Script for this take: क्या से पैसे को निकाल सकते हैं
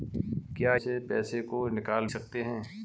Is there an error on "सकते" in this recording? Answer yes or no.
no